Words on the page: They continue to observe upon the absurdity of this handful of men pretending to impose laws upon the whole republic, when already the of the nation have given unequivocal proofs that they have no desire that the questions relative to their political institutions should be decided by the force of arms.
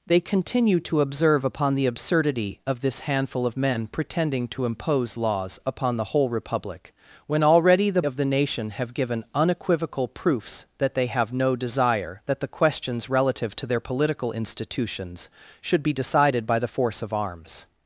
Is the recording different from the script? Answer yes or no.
no